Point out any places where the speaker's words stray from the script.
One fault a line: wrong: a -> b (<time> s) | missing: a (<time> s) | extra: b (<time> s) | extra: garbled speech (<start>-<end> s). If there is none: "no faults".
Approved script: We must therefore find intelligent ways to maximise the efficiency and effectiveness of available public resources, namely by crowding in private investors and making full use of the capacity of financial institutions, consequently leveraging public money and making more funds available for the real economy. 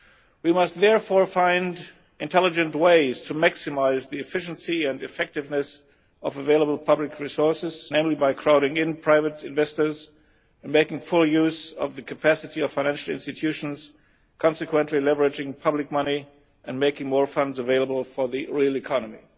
no faults